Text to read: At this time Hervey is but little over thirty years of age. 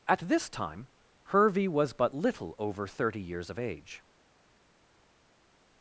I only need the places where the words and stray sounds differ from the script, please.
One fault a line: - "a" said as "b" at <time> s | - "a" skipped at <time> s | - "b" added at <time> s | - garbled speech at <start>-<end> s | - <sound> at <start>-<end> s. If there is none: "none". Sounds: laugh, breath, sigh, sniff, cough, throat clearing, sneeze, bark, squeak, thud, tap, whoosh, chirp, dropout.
- "is" said as "was" at 1.7 s